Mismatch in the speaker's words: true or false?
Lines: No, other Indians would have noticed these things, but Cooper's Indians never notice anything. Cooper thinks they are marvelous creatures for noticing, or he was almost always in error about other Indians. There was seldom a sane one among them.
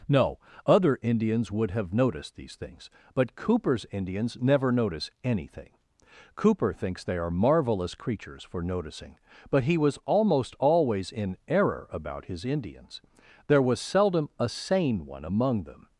true